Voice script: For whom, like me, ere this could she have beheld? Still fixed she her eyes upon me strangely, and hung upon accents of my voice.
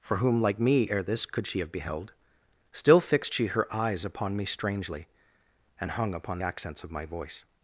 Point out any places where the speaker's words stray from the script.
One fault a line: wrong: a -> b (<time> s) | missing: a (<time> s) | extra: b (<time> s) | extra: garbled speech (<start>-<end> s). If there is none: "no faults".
no faults